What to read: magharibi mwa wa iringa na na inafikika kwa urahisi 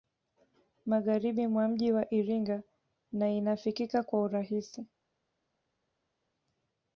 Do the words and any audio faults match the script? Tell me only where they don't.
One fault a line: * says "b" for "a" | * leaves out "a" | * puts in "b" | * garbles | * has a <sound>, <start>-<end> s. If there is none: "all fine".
* puts in "mji"
* leaves out "na"